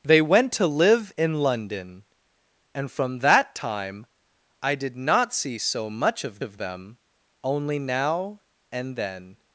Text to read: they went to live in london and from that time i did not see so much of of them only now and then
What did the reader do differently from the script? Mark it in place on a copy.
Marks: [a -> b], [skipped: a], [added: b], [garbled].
they went to live in london and from that time i did not see so much of of them only now and then